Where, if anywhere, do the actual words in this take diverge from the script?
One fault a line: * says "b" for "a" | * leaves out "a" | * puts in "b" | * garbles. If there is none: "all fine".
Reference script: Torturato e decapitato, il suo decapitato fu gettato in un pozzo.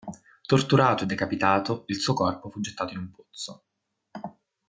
* says "corpo" for "decapitato"